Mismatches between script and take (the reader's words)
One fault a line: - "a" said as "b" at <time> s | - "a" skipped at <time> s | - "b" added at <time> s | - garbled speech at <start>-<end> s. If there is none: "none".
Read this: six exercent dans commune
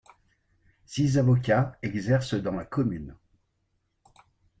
- "avocats" added at 1.2 s
- "la" added at 2.5 s